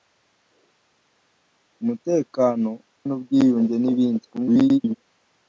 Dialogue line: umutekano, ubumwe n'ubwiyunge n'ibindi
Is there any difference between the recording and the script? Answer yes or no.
yes